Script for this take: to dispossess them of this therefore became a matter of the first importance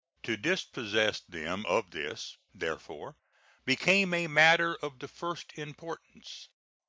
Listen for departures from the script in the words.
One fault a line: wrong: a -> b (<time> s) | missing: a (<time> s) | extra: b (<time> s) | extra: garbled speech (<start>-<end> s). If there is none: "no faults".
no faults